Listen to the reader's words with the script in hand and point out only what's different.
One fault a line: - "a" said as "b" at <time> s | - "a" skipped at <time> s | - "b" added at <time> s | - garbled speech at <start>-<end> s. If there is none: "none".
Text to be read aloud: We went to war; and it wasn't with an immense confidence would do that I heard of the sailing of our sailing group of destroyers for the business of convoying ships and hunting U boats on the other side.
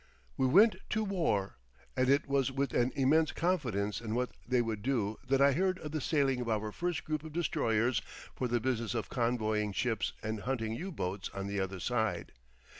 - "wasn't" said as "was" at 2.3 s
- "in what they" added at 4.0 s
- "sailing" said as "first" at 6.7 s